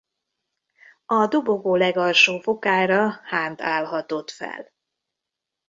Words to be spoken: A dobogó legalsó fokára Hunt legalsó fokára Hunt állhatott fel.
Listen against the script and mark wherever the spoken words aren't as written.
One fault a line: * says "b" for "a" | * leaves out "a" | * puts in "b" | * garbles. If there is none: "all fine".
* leaves out "legalsó fokára Hunt"